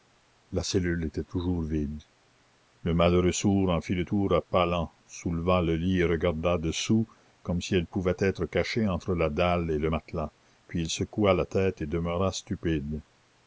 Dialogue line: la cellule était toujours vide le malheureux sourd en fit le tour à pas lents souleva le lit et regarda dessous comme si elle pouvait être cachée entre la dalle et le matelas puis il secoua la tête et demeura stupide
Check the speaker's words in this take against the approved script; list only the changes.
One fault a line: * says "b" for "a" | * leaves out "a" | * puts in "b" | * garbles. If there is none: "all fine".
all fine